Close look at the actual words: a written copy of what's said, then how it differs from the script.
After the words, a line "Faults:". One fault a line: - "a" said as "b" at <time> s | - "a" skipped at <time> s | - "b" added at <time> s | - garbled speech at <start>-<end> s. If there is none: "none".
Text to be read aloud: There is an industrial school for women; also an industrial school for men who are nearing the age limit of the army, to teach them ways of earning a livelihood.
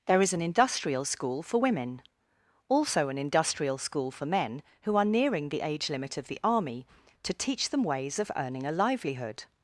There is an industrial school for women; also an industrial school for men who are nearing the age limit of the army, to teach them ways of earning a livelihood.
Faults:
none